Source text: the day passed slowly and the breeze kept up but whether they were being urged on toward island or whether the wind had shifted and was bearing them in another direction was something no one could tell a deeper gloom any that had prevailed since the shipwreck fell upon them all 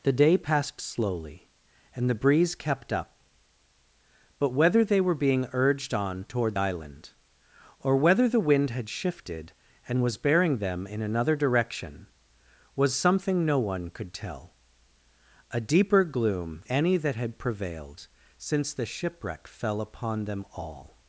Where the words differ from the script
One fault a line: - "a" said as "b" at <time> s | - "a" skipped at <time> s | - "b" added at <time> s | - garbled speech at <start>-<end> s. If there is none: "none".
none